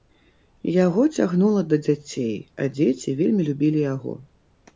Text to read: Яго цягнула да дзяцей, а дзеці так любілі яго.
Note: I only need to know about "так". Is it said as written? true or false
false